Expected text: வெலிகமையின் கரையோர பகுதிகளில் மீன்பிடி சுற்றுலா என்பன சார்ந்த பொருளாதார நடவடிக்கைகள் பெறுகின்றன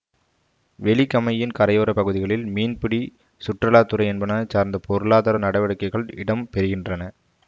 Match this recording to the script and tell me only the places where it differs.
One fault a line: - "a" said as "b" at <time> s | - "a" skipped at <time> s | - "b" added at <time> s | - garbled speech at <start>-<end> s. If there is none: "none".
- "துறை" added at 3.8 s
- "இடம்" added at 6.2 s